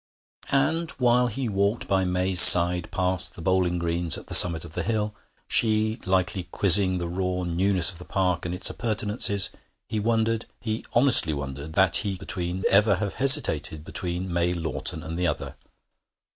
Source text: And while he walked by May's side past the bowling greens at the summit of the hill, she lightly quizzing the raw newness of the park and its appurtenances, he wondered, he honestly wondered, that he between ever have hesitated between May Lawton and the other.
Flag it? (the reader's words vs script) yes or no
no